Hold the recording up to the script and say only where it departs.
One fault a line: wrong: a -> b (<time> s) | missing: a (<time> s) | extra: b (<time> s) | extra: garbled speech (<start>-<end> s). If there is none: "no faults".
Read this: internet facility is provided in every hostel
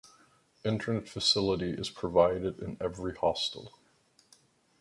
no faults